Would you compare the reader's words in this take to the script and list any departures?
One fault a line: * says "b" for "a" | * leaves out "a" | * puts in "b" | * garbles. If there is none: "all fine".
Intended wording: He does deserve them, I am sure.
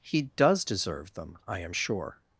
all fine